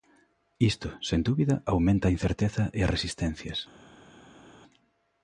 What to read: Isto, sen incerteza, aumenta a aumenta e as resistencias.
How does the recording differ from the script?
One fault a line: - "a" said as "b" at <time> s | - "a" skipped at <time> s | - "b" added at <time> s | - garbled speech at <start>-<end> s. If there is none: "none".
- "incerteza" said as "dúbida" at 1.3 s
- "aumenta" said as "incerteza" at 2.2 s